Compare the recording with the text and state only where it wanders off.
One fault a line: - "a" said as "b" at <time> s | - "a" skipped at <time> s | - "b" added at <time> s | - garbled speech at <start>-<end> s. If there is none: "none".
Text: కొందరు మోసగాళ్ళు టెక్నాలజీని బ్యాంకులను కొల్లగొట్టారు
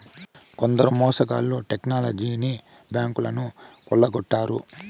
none